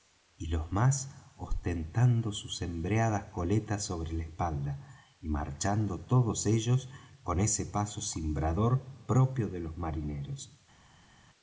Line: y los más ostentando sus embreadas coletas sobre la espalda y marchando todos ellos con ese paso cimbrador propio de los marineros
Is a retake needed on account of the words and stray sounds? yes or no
no